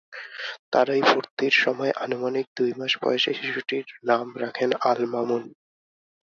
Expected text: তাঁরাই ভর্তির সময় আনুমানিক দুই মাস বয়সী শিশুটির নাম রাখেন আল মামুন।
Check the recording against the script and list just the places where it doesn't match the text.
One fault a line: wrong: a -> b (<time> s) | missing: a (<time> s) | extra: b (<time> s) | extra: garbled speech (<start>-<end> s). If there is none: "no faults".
no faults